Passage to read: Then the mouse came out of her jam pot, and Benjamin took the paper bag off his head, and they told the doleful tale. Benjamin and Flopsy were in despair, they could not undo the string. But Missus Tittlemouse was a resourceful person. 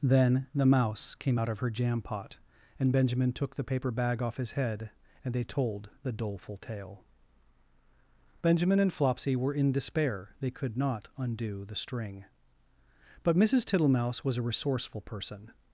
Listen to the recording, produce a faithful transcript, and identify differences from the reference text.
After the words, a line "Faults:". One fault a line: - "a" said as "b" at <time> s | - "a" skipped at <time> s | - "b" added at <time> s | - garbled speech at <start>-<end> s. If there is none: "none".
Then the mouse came out of her jam pot, and Benjamin took the paper bag off his head, and they told the doleful tale. Benjamin and Flopsy were in despair, they could not undo the string. But Missus Tittlemouse was a resourceful person.
Faults:
none